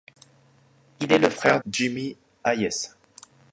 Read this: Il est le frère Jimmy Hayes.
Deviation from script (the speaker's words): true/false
false